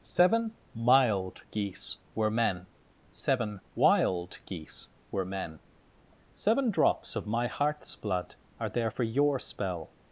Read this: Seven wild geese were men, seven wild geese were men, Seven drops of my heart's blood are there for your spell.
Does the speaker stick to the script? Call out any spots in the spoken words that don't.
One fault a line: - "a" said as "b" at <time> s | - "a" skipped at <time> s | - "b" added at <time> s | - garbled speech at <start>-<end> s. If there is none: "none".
- "wild" said as "mild" at 0.7 s